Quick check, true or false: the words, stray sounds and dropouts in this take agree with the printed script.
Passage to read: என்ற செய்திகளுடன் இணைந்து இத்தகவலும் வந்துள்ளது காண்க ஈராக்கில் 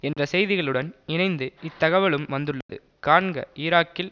false